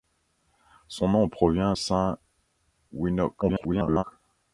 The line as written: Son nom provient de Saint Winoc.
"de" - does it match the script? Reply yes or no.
no